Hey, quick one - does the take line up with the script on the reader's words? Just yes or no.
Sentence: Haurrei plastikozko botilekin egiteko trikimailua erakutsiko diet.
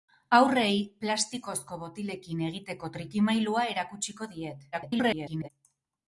no